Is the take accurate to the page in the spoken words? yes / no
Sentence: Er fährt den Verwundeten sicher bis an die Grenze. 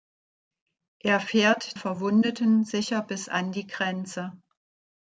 no